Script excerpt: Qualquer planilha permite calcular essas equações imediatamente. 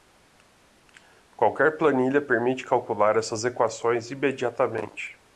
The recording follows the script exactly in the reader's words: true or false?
true